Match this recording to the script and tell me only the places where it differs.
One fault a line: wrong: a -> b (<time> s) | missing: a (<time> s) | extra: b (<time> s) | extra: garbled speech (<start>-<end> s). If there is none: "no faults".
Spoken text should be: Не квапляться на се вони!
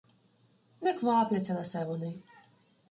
no faults